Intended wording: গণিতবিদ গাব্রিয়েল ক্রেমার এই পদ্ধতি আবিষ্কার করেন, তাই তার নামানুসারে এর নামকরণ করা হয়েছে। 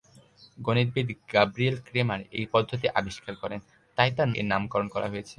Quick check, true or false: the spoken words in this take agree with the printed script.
false